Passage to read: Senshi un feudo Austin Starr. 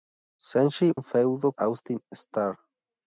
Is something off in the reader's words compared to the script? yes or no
no